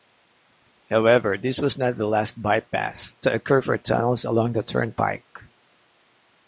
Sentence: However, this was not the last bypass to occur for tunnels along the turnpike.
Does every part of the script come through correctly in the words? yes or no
yes